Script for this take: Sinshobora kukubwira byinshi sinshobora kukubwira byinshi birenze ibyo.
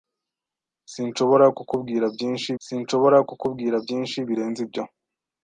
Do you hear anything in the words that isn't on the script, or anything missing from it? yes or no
no